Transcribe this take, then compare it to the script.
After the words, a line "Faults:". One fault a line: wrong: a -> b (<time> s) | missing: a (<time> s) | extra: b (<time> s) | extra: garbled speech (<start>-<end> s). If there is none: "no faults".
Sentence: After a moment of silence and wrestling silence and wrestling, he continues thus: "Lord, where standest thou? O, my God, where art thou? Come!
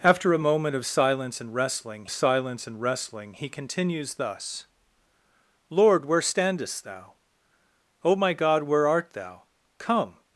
After a moment of silence and wrestling silence and wrestling, he continues thus: "Lord, where standest thou? O, my God, where art thou? Come!
Faults:
no faults